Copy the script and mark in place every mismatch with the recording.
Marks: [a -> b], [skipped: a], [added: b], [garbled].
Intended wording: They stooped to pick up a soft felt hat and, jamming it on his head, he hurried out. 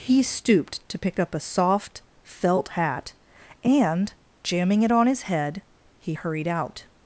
[They -> He] stooped to pick up a soft felt hat and, jamming it on his head, he hurried out.